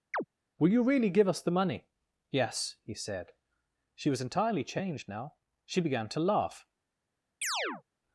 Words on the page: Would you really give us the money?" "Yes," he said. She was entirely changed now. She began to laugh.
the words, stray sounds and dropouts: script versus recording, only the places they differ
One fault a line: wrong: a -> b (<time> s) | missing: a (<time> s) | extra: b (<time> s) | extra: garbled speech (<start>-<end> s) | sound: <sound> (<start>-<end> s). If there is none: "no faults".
sound: chirp (0.1-0.2 s)
wrong: Would -> Will (0.6 s)
sound: chirp (7.4-7.8 s)